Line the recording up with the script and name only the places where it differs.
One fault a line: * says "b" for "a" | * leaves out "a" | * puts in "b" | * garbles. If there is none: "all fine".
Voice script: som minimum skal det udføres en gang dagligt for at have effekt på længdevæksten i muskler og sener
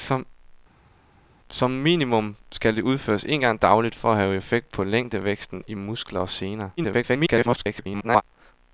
* garbles